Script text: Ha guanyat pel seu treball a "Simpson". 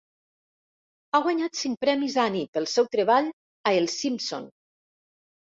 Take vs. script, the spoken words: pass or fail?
fail